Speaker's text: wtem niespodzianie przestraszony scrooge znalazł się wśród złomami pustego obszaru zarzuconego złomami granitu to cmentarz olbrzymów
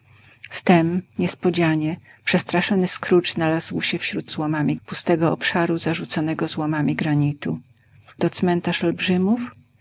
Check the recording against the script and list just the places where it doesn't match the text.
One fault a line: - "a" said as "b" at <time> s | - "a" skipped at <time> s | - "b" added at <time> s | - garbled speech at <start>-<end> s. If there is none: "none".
none